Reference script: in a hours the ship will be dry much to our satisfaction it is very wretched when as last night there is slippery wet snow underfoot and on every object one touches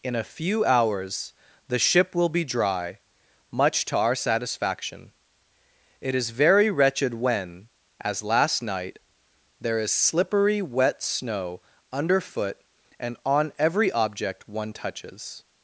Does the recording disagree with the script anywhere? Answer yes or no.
yes